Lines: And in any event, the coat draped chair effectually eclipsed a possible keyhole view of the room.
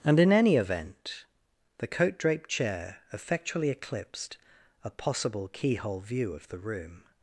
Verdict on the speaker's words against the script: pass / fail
pass